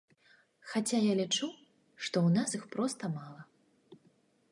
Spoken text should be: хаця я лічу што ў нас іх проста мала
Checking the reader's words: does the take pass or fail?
pass